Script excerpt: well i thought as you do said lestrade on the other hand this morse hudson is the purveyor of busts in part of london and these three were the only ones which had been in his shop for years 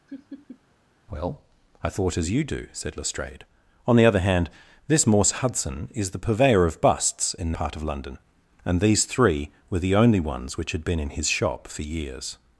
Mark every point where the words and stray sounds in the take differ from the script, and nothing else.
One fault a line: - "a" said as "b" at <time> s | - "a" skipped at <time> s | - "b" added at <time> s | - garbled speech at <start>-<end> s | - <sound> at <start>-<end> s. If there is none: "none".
- laugh at 0.1-0.6 s